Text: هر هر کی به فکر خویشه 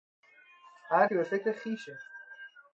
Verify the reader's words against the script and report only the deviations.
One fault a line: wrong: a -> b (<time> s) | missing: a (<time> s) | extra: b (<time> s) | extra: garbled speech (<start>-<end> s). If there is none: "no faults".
missing: هر (1.1 s)